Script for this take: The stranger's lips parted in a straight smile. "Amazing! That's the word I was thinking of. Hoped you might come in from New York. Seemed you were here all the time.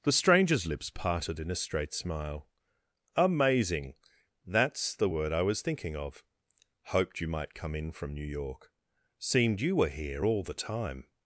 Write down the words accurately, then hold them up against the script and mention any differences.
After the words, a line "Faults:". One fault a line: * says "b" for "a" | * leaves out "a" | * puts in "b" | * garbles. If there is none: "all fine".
The stranger's lips parted in a straight smile. "Amazing! That's the word I was thinking of. Hoped you might come in from New York. Seemed you were here all the time.
Faults:
all fine